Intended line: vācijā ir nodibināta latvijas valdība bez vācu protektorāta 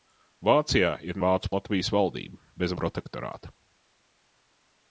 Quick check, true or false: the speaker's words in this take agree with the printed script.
false